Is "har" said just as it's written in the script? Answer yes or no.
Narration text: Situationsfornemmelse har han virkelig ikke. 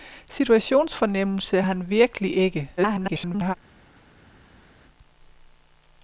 no